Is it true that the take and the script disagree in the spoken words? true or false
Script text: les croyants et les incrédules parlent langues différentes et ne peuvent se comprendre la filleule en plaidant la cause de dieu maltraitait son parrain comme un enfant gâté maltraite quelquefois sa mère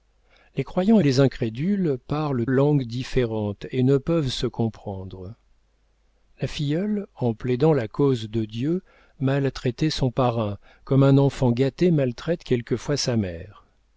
false